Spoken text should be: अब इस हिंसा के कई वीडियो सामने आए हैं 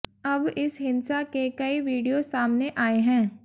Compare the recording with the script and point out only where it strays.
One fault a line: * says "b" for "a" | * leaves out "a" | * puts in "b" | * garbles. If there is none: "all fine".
all fine